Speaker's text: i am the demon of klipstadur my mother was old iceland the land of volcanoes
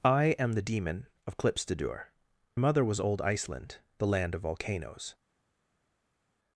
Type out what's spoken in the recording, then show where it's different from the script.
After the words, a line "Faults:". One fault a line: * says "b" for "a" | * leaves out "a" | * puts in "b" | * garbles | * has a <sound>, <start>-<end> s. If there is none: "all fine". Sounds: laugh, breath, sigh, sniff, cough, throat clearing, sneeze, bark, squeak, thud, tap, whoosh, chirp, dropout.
i am the demon of klipstadur mother was old iceland the land of volcanoes
Faults:
* leaves out "my"